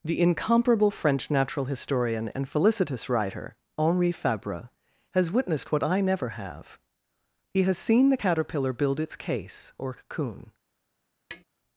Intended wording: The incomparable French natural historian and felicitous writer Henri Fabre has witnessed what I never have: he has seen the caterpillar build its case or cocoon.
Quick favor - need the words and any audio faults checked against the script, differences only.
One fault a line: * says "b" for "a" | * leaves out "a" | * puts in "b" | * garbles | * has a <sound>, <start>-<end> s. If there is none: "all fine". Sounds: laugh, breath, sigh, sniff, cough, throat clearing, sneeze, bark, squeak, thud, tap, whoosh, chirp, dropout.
* has a tap, 11.3-11.4 s